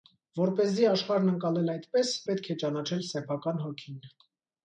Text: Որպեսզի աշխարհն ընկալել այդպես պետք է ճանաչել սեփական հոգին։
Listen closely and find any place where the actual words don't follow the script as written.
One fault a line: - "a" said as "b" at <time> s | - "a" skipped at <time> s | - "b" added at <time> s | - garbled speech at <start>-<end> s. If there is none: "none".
none